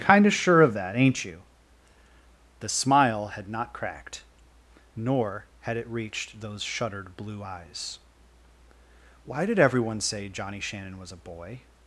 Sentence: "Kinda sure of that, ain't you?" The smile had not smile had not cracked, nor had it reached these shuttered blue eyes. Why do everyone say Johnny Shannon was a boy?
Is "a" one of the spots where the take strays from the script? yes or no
no